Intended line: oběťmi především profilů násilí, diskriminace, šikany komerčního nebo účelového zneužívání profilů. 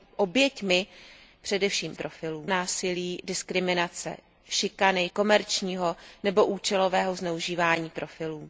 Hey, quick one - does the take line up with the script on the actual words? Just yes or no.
yes